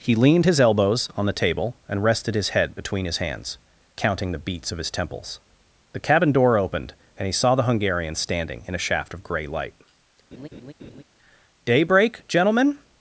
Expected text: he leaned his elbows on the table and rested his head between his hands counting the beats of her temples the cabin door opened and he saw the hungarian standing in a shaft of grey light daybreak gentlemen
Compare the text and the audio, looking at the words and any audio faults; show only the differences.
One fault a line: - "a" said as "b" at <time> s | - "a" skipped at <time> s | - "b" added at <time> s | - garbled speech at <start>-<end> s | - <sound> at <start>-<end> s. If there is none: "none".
- "her" said as "his" at 4.8 s
- laugh at 10.3-11.0 s